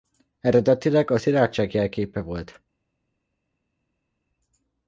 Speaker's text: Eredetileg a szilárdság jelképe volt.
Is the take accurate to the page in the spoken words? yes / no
yes